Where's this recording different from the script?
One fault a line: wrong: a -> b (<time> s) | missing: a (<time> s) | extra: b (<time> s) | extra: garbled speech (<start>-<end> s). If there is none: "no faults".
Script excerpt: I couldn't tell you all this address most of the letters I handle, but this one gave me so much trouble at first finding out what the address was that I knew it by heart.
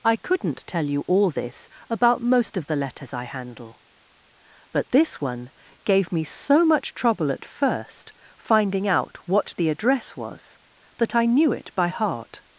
wrong: address -> about (1.9 s)